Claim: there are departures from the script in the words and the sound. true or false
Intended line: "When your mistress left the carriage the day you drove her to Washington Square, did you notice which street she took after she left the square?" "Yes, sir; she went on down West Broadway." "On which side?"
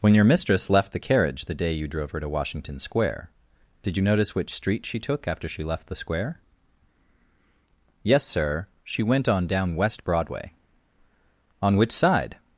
false